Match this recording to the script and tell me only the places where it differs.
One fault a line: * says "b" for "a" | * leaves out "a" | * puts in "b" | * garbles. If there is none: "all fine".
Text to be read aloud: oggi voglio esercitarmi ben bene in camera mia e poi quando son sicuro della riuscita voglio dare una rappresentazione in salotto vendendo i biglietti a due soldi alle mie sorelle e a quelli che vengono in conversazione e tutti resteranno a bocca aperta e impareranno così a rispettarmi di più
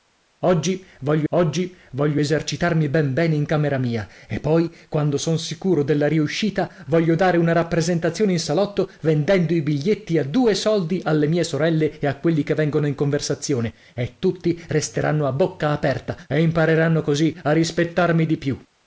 * puts in "oggi voglio"